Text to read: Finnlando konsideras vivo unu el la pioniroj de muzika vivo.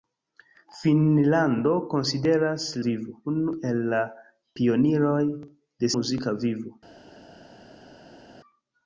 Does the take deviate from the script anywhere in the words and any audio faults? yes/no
no